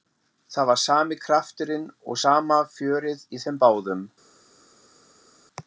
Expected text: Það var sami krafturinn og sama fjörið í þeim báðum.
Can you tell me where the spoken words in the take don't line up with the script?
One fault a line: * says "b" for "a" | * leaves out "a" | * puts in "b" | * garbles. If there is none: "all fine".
all fine